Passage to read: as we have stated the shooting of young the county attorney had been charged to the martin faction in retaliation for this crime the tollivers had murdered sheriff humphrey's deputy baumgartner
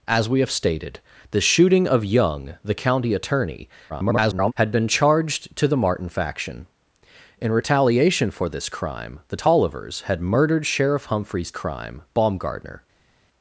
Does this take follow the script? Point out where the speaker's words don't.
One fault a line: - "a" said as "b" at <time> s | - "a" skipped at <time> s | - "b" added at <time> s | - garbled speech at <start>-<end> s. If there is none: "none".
- garbled speech at 3.9-4.5 s
- "deputy" said as "crime" at 11.5 s